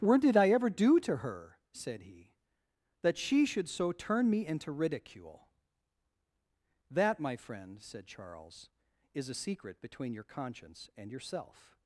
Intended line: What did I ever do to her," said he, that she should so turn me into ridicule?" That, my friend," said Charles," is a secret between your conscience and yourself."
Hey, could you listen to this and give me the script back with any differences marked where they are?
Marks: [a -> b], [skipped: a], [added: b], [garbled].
What did I ever do to her," said he, that she should so turn me into ridicule?" That, my friend," said Charles," is a secret between your conscience and yourself."